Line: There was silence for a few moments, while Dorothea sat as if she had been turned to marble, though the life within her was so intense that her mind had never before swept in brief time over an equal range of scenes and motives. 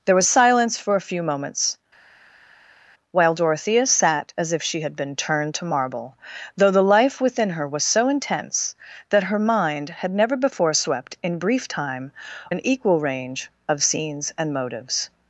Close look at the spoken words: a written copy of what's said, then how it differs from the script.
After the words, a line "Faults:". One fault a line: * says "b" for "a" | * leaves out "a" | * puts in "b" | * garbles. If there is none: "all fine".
There was silence for a few moments, while Dorothea sat as if she had been turned to marble, though the life within her was so intense that her mind had never before swept in brief time an equal range of scenes and motives.
Faults:
* leaves out "over"